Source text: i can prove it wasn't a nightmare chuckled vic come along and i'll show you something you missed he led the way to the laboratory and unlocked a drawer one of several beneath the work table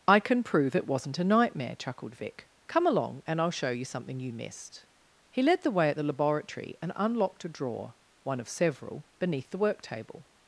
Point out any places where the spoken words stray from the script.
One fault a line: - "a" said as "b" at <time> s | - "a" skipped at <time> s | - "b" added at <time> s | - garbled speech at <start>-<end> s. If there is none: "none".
- "to" said as "at" at 5.9 s